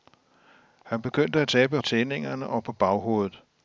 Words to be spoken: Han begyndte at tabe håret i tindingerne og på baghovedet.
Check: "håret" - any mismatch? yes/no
yes